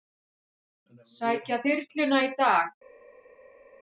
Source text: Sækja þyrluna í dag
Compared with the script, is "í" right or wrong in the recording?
right